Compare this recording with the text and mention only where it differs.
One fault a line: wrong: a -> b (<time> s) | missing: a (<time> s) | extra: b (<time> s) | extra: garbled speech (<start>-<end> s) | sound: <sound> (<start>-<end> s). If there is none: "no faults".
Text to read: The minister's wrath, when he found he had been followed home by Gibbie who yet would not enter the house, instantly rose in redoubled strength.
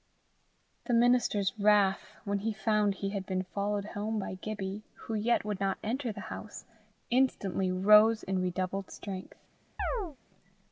sound: chirp (9.8-10.2 s)